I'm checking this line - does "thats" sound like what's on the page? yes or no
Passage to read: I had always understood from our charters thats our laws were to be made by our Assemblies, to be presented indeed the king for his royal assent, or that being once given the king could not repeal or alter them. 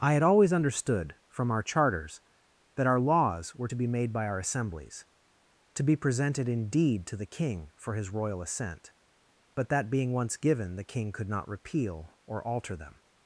no